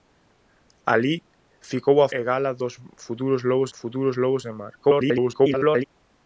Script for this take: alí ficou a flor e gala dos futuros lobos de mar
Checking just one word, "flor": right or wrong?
wrong